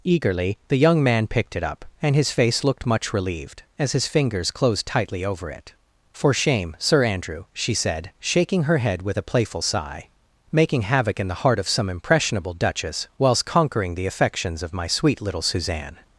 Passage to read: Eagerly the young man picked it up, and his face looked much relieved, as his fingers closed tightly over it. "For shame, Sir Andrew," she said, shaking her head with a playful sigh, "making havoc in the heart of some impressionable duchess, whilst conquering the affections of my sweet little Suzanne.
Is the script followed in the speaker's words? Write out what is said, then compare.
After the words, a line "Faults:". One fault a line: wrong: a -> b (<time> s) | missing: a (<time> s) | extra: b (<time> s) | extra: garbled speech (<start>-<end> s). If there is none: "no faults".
Eagerly the young man picked it up, and his face looked much relieved, as his fingers closed tightly over it. "For shame, Sir Andrew," she said, shaking her head with a playful sigh, "making havoc in the heart of some impressionable duchess, whilst conquering the affections of my sweet little Suzanne.
Faults:
no faults